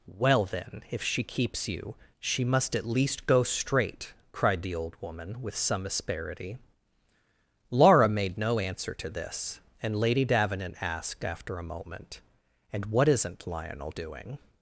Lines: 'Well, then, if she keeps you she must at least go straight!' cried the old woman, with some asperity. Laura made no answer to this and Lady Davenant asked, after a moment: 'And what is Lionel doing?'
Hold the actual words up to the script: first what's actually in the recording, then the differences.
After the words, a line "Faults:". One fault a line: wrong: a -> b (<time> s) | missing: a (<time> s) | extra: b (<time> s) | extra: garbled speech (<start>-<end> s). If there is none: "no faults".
'Well, then, if she keeps you she must at least go straight!' cried the old woman, with some asperity. Laura made no answer to this and Lady Davenant asked, after a moment: 'And what isn't Lionel doing?'
Faults:
wrong: is -> isn't (13.1 s)